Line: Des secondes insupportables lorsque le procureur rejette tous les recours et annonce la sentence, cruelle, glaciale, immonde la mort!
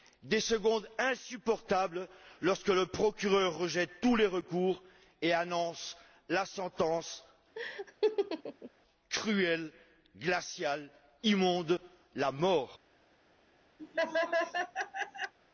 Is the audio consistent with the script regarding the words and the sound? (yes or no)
no